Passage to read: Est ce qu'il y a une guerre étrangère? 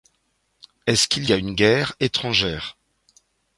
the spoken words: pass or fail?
pass